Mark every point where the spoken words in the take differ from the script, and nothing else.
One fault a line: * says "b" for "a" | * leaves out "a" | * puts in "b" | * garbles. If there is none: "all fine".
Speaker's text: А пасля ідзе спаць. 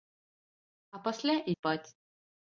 * leaves out "ідзе"